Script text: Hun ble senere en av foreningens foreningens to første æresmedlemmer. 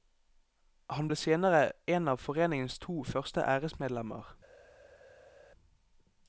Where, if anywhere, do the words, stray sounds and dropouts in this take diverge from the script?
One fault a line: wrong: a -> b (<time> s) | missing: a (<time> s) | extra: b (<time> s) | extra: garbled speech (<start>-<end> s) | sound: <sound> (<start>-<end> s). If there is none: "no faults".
wrong: Hun -> Han (0.9 s)
missing: foreningens (2.8 s)